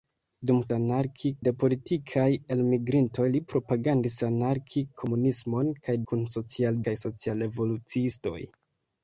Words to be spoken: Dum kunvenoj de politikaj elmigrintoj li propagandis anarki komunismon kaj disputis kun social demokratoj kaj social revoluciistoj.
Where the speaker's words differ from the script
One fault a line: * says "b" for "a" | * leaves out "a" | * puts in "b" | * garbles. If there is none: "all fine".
* says "anarki" for "kunvenoj"
* leaves out "disputis"
* leaves out "demokratoj"